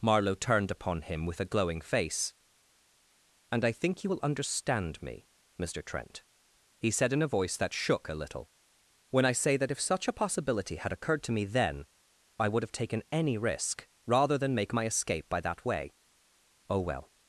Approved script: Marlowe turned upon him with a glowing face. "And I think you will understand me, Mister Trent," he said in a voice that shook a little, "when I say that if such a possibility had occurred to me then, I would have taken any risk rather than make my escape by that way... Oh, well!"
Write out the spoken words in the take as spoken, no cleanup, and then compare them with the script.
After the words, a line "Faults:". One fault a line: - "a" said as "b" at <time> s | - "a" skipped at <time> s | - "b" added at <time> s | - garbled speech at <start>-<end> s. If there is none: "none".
Marlowe turned upon him with a glowing face. "And I think you will understand me, Mister Trent," he said in a voice that shook a little, "when I say that if such a possibility had occurred to me then, I would have taken any risk rather than make my escape by that way... Oh, well!"
Faults:
none